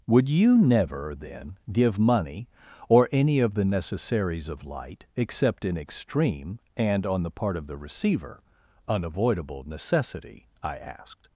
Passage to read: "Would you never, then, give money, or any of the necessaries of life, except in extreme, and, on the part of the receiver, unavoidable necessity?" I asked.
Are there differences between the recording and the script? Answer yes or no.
yes